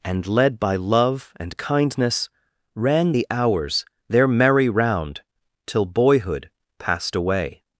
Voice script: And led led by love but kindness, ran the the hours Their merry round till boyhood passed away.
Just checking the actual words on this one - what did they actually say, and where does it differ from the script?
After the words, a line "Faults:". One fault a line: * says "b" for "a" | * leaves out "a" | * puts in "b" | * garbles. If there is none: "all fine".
And led by love and kindness, ran the hours Their merry round till boyhood passed away.
Faults:
* leaves out "led"
* says "and" for "but"
* leaves out "the"